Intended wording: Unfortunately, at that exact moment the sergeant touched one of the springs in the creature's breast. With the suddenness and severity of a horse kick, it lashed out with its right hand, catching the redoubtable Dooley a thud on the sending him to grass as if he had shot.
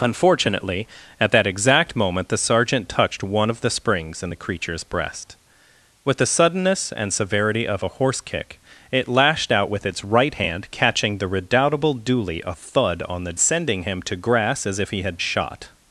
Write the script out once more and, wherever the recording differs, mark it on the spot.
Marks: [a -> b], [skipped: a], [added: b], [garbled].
Unfortunately, at that exact moment the sergeant touched one of the springs in the creature's breast. With the suddenness and severity of a horse kick, it lashed out with its right hand, catching the redoubtable Dooley a thud on the sending him to grass as if he had shot.